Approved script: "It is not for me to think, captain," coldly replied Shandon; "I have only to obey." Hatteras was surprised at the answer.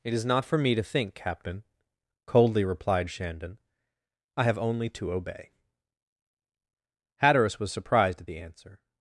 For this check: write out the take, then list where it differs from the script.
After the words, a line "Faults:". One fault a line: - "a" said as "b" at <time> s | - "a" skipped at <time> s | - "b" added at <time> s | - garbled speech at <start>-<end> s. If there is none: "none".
"It is not for me to think, captain," coldly replied Shandon; "I have only to obey." Hatteras was surprised at the answer.
Faults:
none